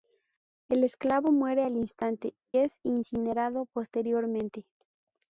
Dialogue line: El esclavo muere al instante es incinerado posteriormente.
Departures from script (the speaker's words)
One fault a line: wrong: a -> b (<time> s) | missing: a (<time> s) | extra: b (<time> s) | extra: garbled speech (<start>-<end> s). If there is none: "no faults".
no faults